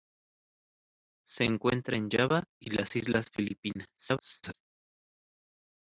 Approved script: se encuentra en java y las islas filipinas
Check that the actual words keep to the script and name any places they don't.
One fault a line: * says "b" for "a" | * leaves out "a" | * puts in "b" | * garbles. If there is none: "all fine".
* garbles